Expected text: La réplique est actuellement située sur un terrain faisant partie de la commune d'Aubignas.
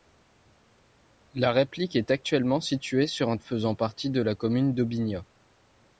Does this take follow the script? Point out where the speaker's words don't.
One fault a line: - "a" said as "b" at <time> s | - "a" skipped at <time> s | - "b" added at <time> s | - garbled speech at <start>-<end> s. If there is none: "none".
- "terrain" skipped at 3.4 s